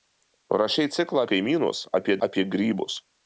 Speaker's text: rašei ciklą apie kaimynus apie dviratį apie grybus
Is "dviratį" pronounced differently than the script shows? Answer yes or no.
yes